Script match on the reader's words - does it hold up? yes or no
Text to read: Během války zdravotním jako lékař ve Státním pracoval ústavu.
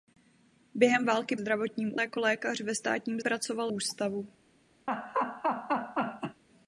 yes